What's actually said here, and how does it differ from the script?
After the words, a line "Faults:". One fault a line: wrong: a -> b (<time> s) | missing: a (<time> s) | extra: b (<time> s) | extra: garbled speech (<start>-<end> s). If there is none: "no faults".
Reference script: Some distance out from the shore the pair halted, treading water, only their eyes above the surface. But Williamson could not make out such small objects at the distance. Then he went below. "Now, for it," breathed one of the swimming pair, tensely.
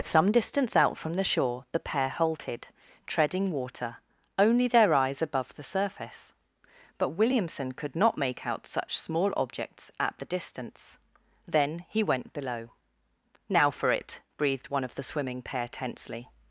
Some distance out from the shore the pair halted, treading water, only their eyes above the surface. But Williamson could not make out such small objects at the distance. Then he went below. "Now, for it," breathed one of the swimming pair, tensely.
Faults:
no faults